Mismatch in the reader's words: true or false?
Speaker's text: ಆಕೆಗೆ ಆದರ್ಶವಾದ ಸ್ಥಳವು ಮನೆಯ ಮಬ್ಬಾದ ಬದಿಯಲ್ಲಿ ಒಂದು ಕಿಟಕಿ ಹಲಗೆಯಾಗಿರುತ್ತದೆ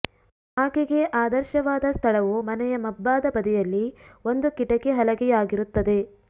false